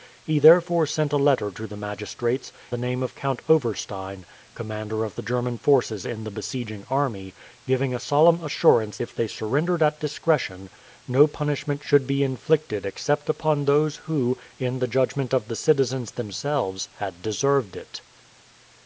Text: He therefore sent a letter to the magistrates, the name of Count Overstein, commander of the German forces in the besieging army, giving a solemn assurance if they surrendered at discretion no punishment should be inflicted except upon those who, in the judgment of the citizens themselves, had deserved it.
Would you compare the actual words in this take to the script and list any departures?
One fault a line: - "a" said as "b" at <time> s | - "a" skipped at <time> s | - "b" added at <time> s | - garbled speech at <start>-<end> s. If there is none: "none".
none